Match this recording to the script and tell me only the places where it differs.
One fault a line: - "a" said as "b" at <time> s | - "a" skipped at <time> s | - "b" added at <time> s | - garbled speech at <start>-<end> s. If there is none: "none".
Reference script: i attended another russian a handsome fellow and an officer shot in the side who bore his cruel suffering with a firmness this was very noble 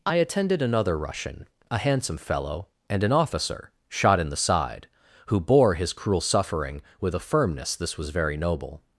none